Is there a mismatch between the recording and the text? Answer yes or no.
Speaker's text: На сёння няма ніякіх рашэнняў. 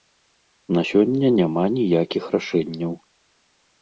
no